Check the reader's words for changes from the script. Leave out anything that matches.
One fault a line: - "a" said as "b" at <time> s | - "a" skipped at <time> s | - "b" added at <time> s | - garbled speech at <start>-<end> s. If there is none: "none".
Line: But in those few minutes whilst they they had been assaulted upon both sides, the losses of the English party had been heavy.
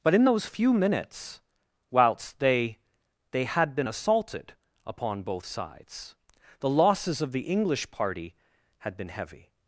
none